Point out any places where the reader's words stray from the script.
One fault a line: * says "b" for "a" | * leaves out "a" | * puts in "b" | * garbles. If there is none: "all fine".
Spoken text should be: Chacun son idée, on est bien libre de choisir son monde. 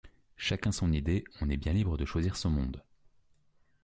all fine